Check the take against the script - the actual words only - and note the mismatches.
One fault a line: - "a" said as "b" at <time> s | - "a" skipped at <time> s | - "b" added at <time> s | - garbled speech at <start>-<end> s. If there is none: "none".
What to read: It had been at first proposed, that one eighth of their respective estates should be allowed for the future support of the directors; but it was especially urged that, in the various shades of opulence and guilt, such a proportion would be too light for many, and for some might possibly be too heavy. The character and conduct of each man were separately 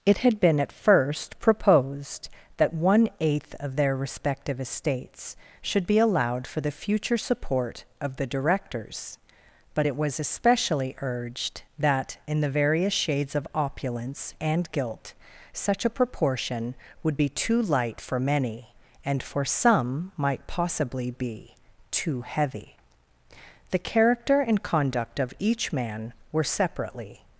none